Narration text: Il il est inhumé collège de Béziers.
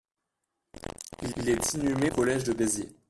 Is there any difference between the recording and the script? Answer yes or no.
no